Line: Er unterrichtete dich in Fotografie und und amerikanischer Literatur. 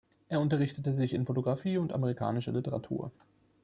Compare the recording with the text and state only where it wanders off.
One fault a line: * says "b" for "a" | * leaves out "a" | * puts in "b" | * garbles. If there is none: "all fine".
* says "sich" for "dich"
* leaves out "und"